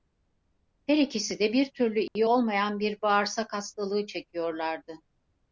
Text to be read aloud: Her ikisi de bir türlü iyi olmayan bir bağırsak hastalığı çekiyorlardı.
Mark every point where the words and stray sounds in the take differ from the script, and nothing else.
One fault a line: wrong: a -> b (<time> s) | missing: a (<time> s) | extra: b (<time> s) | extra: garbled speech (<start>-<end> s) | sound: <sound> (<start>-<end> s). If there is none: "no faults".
sound: dropout (2.1-2.2 s)